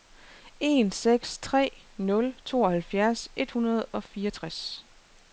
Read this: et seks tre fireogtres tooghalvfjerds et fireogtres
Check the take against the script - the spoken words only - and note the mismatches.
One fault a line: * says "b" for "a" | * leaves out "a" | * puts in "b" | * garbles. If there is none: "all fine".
* says "en" for "et"
* says "nul" for "fireogtres"
* puts in "hundrede og"